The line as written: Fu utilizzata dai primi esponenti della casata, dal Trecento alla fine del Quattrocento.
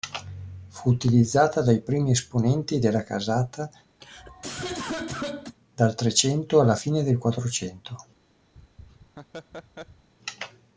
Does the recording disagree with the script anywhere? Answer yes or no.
no